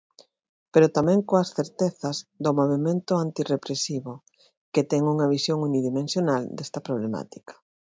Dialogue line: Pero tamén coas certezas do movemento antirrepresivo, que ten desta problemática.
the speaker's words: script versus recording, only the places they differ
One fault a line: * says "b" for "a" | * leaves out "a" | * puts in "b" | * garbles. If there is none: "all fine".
* puts in "unha visión unidimensional"